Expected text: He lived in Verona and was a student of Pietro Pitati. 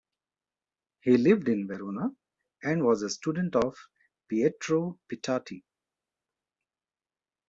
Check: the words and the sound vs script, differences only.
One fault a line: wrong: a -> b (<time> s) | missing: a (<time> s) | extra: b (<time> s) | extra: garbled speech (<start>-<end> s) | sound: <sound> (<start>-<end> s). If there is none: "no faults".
no faults